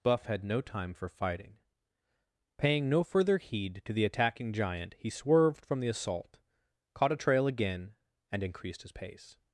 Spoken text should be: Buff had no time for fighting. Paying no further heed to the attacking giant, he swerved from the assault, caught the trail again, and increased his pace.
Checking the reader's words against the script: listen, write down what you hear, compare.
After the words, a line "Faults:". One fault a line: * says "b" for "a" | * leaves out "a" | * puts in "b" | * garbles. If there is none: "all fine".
Buff had no time for fighting. Paying no further heed to the attacking giant, he swerved from the assault, caught a trail again, and increased his pace.
Faults:
* says "a" for "the"